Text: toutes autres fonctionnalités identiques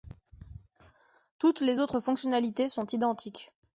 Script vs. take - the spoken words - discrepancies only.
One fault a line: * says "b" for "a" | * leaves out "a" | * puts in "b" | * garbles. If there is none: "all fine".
* puts in "les"
* puts in "sont"